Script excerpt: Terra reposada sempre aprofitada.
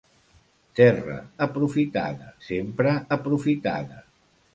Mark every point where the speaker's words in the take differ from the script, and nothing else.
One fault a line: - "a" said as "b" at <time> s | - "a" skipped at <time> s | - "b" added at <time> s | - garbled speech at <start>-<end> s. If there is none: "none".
- "reposada" said as "aprofitada" at 1.5 s